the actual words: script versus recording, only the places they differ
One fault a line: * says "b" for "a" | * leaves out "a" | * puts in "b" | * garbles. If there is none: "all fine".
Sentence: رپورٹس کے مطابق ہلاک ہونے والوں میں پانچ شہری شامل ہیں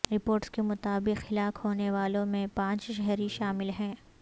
all fine